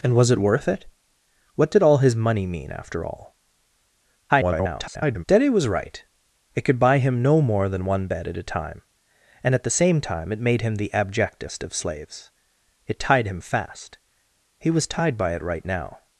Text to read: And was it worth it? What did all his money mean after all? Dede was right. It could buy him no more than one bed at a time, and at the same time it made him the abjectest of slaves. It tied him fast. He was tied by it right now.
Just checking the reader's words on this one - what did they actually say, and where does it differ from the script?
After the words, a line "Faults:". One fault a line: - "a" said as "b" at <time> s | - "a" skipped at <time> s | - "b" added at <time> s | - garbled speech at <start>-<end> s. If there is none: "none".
And was it worth it? What did all his money mean after all? [garbled] Dede was right. It could buy him no more than one bed at a time, and at the same time it made him the abjectest of slaves. It tied him fast. He was tied by it right now.
Faults:
- garbled speech at 4.3-5.2 s